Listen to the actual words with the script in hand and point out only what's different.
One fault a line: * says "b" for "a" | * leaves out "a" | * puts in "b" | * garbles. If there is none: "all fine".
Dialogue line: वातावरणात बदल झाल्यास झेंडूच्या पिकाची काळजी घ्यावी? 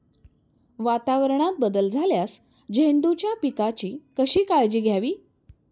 * puts in "कशी"